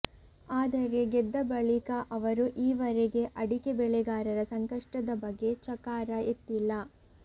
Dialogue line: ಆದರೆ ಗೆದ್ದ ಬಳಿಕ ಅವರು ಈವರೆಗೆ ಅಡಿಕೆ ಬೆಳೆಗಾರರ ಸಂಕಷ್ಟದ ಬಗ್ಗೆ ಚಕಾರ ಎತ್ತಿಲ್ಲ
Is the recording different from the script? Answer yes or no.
no